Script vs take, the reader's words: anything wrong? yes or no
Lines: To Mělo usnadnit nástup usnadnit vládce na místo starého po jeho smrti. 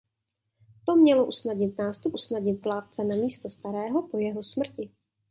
no